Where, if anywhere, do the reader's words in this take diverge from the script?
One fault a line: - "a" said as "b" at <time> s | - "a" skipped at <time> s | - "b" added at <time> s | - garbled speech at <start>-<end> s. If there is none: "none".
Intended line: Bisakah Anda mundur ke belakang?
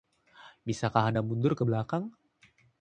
none